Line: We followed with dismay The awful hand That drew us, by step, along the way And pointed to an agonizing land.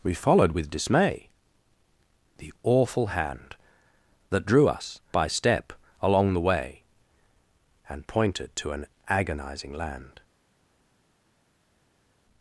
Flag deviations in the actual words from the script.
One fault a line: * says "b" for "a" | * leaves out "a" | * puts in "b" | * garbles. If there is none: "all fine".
all fine